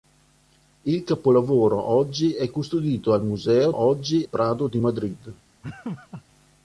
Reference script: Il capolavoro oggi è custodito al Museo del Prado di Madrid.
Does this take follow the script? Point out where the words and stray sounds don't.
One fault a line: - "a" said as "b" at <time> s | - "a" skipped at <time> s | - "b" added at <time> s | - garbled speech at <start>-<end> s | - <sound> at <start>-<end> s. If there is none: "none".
- "del" said as "oggi" at 3.7 s
- laugh at 5.6-6.2 s